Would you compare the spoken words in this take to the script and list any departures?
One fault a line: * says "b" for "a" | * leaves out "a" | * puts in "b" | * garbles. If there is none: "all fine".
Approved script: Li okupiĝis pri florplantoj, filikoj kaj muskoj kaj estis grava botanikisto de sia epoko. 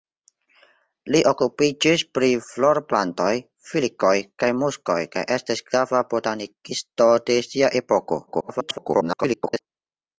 * garbles